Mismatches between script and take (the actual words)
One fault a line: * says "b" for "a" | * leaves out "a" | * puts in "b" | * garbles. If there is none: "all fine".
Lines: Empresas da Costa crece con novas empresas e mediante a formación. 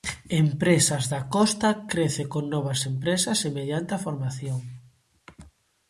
all fine